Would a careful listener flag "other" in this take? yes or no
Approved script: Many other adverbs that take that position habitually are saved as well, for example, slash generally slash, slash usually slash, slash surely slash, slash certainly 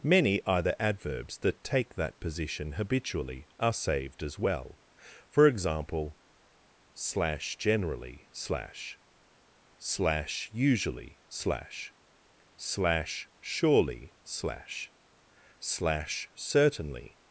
yes